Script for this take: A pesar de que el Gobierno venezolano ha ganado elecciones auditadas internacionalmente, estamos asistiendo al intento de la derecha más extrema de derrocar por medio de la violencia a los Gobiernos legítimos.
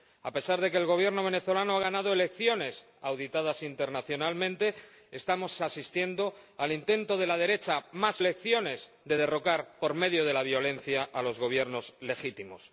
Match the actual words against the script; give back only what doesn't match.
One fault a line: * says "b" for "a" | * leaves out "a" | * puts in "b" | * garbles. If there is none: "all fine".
* says "elecciones" for "extrema"